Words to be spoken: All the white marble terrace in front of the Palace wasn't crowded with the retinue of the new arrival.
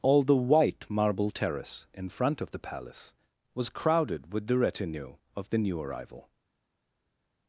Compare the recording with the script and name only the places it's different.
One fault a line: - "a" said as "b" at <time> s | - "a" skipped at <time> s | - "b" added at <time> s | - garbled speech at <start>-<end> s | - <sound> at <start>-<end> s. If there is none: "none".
- "wasn't" said as "was" at 3.5 s